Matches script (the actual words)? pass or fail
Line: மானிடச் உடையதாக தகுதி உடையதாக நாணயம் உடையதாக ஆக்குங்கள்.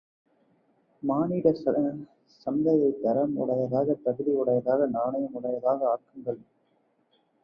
fail